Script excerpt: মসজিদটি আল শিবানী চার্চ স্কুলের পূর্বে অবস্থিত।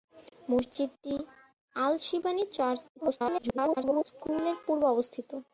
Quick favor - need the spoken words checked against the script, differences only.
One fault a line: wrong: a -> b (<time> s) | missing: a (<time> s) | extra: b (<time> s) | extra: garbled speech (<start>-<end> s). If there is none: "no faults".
extra: garbled speech (3.0-4.0 s)